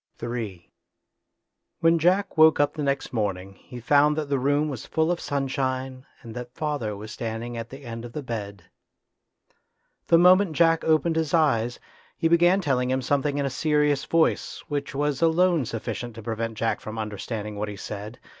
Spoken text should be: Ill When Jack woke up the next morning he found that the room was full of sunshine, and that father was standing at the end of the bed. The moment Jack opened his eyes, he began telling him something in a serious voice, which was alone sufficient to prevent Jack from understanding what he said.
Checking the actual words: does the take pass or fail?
pass